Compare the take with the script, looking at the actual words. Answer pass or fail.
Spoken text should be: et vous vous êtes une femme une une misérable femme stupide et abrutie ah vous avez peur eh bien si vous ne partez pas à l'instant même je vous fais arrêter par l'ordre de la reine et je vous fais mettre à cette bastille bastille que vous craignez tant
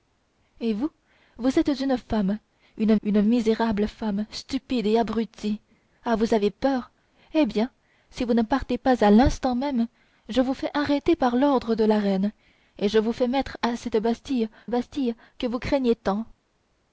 pass